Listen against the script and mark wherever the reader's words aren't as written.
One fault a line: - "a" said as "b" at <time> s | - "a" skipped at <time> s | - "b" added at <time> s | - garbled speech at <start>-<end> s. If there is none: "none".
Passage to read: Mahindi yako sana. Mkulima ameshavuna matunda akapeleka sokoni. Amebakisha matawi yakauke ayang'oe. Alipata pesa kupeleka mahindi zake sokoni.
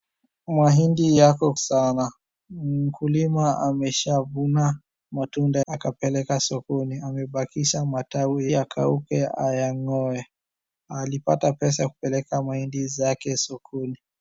none